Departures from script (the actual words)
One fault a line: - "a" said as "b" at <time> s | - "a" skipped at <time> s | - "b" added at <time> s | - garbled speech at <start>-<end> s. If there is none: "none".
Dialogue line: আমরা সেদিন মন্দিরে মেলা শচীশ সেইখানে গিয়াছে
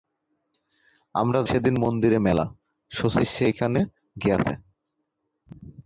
none